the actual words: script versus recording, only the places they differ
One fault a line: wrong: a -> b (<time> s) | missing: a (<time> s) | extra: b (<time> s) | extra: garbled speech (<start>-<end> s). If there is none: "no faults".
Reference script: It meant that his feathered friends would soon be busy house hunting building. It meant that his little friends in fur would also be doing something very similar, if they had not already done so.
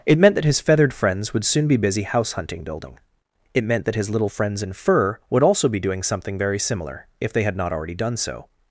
no faults